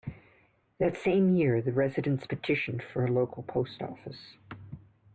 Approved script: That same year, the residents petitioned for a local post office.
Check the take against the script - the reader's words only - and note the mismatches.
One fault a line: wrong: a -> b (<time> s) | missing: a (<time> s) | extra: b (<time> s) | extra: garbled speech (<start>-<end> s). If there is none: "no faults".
no faults